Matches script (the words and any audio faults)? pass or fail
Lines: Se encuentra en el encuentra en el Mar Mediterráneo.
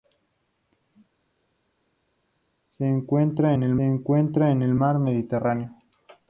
pass